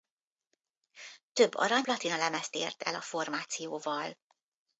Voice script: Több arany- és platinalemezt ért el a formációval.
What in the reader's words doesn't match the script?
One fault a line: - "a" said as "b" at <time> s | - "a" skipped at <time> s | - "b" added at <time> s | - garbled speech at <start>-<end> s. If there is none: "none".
- "és" skipped at 1.9 s